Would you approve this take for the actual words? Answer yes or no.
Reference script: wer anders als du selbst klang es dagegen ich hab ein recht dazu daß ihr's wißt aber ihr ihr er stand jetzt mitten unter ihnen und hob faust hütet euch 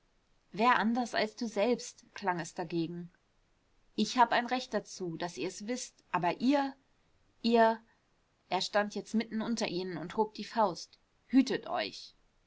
no